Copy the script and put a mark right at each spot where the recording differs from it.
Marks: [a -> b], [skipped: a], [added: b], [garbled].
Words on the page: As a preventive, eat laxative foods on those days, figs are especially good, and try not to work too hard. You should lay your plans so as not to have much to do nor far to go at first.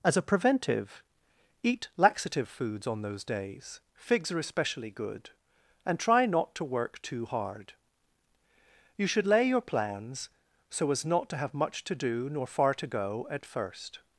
As a preventive, eat laxative foods on those days, figs are especially good, and try not to work too hard. You should lay your plans so as not to have much to do nor far to go at first.